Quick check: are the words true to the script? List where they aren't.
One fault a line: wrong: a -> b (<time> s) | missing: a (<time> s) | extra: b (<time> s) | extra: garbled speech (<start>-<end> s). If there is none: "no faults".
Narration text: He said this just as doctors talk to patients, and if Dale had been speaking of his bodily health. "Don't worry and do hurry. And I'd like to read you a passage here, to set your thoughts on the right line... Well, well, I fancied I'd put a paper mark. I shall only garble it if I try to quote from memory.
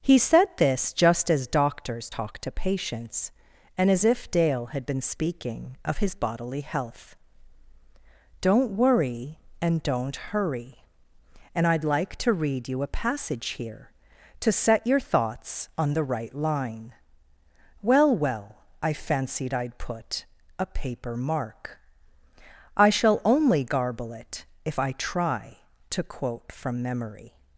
extra: as (3.9 s)
wrong: do -> don't (9.8 s)